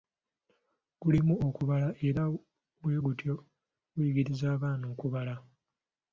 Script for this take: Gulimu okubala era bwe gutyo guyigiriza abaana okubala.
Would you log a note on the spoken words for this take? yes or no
no